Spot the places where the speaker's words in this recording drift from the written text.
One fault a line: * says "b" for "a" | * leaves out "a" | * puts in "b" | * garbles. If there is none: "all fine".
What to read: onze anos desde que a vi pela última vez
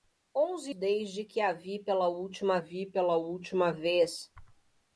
* leaves out "anos"
* puts in "vi pela última"